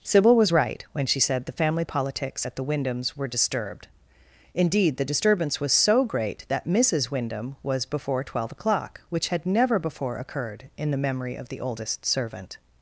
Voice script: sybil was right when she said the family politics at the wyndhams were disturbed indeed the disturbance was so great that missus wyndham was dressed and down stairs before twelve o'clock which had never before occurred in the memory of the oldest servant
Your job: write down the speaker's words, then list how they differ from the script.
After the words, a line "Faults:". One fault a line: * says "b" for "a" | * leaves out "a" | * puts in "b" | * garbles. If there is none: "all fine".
sybil was right when she said the family politics at the wyndhams were disturbed indeed the disturbance was so great that missus wyndham was before twelve o'clock which had never before occurred in the memory of the oldest servant
Faults:
* leaves out "dressed and down stairs"